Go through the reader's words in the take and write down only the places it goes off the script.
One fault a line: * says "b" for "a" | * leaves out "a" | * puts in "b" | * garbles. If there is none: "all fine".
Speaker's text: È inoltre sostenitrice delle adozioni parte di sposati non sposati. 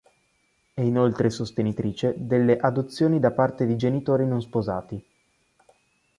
* puts in "da"
* says "genitori" for "sposati"